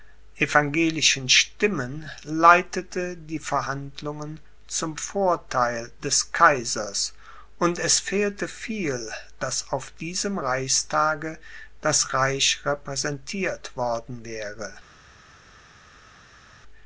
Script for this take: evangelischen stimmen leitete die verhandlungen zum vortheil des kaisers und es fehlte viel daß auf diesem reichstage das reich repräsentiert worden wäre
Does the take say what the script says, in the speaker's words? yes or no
yes